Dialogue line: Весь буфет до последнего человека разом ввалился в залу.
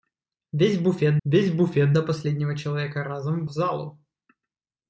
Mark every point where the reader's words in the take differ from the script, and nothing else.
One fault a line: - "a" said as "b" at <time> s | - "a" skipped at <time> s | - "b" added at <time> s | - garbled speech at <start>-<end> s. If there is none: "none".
- "весь буфет" added at 1.2 s
- "ввалился" skipped at 3.5 s